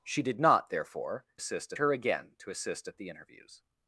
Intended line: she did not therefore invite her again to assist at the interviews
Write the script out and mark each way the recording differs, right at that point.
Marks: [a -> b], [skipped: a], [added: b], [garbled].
she did not therefore [invite -> assist] her again to assist at the interviews